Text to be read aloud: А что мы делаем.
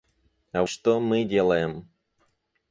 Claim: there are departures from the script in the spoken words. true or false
false